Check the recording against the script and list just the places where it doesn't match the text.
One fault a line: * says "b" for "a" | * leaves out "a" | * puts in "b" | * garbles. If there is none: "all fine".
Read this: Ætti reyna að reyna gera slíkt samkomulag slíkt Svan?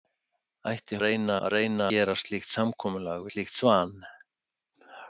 all fine